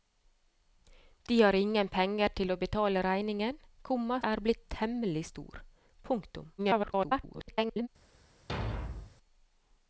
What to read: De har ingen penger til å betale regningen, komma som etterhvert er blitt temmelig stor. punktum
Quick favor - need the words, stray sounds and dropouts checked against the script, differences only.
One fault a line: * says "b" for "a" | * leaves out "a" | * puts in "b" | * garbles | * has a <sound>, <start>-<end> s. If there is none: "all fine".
* leaves out "som etterhvert"
* garbles
* has a thud, 8.5-9.2 s